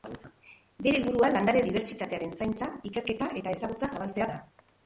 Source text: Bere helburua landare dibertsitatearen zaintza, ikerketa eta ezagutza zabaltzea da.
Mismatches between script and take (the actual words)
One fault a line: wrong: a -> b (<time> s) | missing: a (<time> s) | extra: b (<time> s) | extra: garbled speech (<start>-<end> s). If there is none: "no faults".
no faults